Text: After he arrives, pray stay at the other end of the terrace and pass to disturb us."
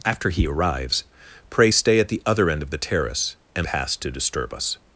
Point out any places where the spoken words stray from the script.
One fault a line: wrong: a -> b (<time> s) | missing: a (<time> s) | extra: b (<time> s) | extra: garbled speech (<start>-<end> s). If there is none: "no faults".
no faults